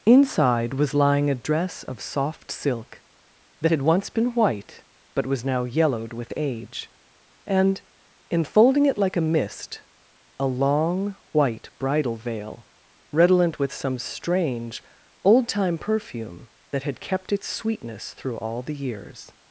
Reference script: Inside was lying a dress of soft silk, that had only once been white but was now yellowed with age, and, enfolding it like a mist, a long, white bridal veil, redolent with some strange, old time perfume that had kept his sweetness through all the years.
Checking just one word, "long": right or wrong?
right